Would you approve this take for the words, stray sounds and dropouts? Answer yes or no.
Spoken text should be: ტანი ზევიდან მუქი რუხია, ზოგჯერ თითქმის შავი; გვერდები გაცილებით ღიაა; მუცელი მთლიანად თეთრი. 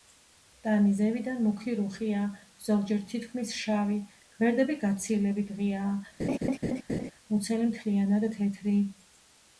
no